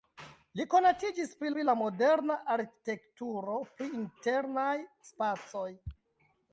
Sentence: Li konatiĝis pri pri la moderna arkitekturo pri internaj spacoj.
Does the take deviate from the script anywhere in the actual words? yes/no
no